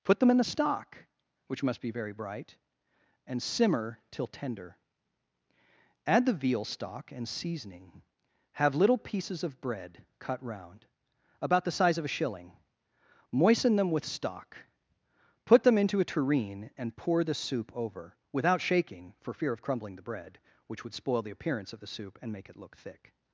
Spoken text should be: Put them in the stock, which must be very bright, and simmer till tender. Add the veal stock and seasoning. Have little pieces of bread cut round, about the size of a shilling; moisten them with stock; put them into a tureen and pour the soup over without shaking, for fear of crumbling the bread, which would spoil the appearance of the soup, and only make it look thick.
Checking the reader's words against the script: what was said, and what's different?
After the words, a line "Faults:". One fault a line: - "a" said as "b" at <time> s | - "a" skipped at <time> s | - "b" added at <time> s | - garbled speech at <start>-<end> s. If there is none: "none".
Put them in the stock, which must be very bright, and simmer till tender. Add the veal stock and seasoning. Have little pieces of bread cut round, about the size of a shilling; moisten them with stock; put them into a tureen and pour the soup over without shaking, for fear of crumbling the bread, which would spoil the appearance of the soup, and make it look thick.
Faults:
- "only" skipped at 22.3 s